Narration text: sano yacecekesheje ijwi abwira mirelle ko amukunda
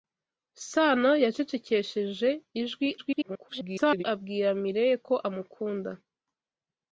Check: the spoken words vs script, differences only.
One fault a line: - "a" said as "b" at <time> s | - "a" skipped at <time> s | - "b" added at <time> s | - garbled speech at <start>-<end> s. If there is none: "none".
- garbled speech at 3.0-4.0 s